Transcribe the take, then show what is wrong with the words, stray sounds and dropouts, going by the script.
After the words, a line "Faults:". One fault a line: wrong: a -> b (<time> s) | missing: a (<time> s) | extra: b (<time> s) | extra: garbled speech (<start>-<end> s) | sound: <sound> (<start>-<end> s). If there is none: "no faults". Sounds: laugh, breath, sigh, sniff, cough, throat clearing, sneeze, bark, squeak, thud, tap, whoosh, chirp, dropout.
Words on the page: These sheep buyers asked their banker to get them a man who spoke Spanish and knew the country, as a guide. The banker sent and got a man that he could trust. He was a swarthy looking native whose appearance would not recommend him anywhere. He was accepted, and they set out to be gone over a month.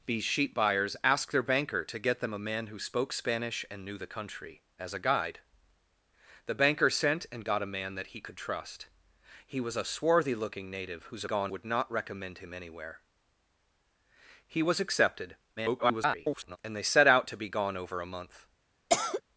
These sheep buyers asked their banker to get them a man who spoke Spanish and knew the country, as a guide. The banker sent and got a man that he could trust. He was a swarthy looking native whose gone would not recommend him anywhere. He was accepted, [garbled] and they set out to be gone over a month.
Faults:
wrong: appearance -> gone (11.2 s)
extra: garbled speech (15.6-16.6 s)
sound: cough (18.9-19.2 s)